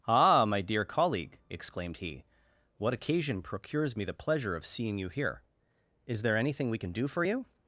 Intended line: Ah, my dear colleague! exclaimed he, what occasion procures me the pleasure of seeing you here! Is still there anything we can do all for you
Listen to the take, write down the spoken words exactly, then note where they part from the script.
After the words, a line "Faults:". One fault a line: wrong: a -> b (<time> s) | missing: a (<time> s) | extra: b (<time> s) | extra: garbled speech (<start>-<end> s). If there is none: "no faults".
Ah, my dear colleague! exclaimed he, what occasion procures me the pleasure of seeing you here! Is there anything we can do for you
Faults:
missing: still (6.2 s)
missing: all (7.1 s)